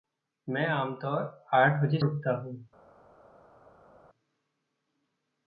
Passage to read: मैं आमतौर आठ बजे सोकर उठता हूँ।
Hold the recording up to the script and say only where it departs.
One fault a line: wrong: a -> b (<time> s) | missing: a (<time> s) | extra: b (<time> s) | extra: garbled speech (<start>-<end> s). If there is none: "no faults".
missing: सोकर (2.0 s)